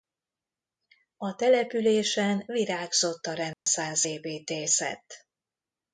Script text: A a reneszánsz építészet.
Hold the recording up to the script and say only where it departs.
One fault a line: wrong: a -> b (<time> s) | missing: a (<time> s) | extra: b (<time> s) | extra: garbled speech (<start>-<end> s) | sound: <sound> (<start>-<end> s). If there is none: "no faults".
extra: településen virágzott (1.4 s)
sound: dropout (3.5-3.7 s)